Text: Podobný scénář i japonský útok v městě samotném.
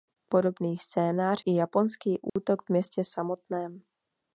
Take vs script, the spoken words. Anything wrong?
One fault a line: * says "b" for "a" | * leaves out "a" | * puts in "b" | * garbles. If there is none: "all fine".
all fine